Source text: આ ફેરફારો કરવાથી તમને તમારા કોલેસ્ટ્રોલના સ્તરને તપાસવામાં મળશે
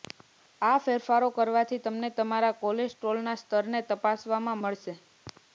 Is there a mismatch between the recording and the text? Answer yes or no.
no